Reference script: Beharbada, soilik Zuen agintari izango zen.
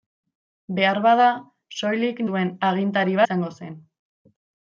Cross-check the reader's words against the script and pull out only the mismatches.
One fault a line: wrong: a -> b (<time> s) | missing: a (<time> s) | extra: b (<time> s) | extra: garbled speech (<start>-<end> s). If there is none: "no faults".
no faults